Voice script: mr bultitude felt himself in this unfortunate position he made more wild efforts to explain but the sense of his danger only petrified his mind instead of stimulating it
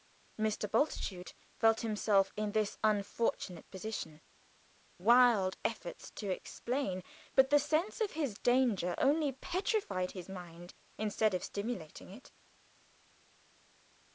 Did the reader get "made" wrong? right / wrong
wrong